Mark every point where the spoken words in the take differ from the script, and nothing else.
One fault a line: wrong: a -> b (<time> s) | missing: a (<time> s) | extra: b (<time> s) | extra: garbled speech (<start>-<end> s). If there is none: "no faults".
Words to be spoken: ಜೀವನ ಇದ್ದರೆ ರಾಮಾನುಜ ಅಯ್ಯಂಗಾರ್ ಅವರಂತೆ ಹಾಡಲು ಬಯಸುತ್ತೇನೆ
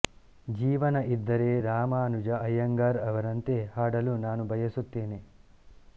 extra: ನಾನು (4.2 s)